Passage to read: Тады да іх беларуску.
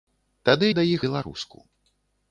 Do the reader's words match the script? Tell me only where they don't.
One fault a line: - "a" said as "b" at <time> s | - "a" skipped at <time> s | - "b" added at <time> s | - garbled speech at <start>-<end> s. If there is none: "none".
none